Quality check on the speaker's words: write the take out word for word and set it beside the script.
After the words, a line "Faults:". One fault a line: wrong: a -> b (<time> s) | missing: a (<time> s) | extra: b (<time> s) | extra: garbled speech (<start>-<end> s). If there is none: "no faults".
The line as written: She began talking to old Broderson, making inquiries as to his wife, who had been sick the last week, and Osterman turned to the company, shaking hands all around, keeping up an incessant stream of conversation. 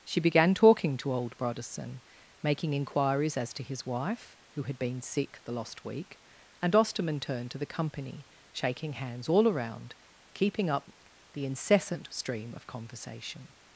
She began talking to old Broderson, making inquiries as to his wife, who had been sick the lost week, and Osterman turned to the company, shaking hands all around, keeping up the incessant stream of conversation.
Faults:
wrong: last -> lost (5.5 s)
wrong: an -> the (11.3 s)